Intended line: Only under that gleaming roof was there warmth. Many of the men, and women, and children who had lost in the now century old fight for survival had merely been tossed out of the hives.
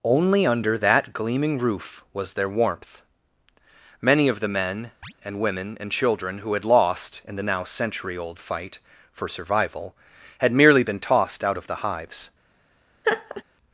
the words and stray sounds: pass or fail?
fail